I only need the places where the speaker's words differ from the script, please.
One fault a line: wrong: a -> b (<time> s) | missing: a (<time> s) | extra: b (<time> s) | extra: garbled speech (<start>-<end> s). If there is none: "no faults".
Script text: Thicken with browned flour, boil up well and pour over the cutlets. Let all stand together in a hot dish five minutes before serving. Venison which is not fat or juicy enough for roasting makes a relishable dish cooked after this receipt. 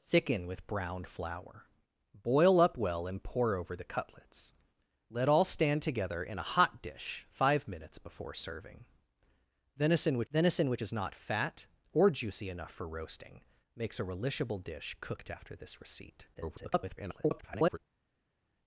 extra: venison which (10.3 s)
extra: garbled speech (16.3-17.8 s)